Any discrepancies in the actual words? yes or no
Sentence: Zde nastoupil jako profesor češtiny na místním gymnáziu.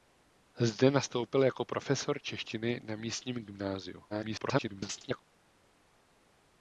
yes